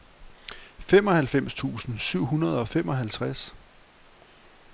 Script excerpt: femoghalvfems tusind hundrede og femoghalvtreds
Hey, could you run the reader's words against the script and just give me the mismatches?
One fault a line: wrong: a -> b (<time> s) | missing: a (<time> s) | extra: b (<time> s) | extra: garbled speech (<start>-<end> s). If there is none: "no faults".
extra: syv (2.0 s)